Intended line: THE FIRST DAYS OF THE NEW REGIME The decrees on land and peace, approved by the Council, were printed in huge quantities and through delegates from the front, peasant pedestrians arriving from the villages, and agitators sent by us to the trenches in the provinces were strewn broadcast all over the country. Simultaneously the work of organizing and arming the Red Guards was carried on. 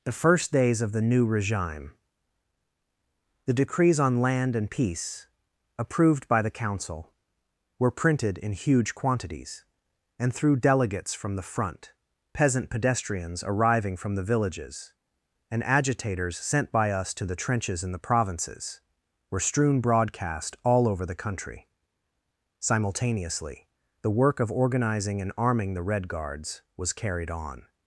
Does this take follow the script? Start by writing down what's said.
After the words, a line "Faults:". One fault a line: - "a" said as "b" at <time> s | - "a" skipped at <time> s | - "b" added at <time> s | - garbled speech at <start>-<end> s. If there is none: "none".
THE FIRST DAYS OF THE NEW REGIME The decrees on land and peace, approved by the Council, were printed in huge quantities and through delegates from the front, peasant pedestrians arriving from the villages, and agitators sent by us to the trenches in the provinces were strewn broadcast all over the country. Simultaneously the work of organizing and arming the Red Guards was carried on.
Faults:
none